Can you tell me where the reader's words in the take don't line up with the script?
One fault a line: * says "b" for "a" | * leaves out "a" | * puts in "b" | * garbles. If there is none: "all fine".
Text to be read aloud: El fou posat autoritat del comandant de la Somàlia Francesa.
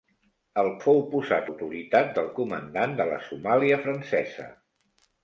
all fine